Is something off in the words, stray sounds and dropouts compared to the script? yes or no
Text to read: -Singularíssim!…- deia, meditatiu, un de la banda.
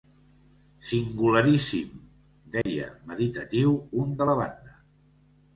yes